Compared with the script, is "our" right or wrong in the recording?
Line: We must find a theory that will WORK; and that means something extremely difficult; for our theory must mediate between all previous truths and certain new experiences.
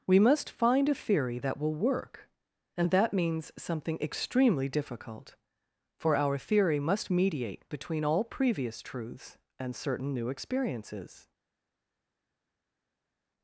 right